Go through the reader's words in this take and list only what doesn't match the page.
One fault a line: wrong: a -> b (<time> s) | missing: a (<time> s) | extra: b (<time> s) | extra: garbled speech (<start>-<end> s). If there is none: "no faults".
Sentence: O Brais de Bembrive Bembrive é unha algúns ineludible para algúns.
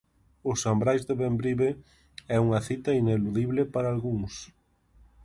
extra: San (0.6 s)
missing: Bembrive (1.7 s)
wrong: algúns -> cita (2.7 s)